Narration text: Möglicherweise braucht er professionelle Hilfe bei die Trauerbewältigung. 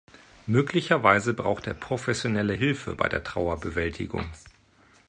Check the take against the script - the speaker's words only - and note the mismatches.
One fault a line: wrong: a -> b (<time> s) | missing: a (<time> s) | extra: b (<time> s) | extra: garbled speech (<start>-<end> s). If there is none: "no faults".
wrong: die -> der (3.1 s)